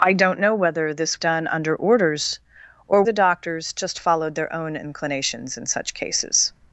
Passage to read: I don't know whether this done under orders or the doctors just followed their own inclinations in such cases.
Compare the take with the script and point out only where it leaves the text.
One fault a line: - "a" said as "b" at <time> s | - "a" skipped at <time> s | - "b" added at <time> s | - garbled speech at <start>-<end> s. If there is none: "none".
none